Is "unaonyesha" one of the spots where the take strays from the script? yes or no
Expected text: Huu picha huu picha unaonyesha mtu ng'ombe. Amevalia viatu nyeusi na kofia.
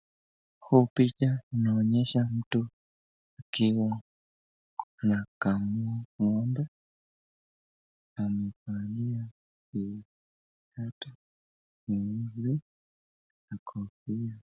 yes